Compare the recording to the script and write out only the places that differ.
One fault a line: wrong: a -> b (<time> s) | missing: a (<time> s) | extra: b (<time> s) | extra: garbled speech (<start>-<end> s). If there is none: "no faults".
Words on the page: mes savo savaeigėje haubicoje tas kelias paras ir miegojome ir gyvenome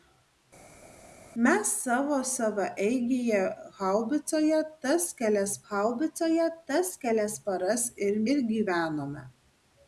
extra: haubicoje tas kelias (5.7 s)
missing: miegojome (8.2 s)